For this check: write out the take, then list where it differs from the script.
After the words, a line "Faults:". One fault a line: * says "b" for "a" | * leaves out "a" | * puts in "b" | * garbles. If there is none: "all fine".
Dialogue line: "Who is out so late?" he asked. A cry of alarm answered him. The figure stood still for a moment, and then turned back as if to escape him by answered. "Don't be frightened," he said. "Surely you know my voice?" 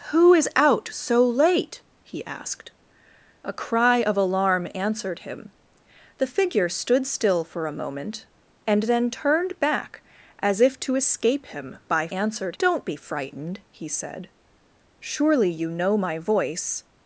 "Who is out so late?" he asked. A cry of alarm answered him. The figure stood still for a moment, and then turned back as if to escape him by answered. "Don't be frightened," he said. "Surely you know my voice?"
Faults:
all fine